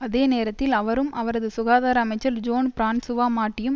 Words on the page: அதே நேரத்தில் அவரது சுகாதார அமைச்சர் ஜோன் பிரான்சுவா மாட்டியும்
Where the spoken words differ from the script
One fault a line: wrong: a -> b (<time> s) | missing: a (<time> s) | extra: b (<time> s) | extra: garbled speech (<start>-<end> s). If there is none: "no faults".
extra: அவரும் (0.7 s)